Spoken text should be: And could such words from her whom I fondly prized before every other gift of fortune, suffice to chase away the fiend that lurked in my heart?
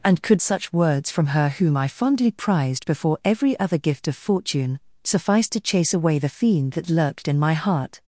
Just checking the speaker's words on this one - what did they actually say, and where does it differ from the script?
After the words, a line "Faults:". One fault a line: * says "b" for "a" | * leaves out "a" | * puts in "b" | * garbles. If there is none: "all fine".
And could such words from her whom I fondly prized before every other gift of fortune, suffice to chase away the fiend that lurked in my heart?
Faults:
all fine